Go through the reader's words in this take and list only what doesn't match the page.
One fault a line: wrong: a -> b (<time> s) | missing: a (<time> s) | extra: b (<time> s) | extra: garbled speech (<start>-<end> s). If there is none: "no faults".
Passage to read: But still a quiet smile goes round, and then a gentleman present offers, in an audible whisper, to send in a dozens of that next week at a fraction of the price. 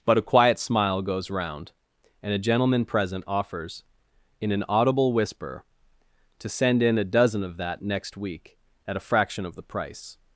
missing: still (0.2 s)
missing: then (2.3 s)
wrong: dozens -> dozen (7.0 s)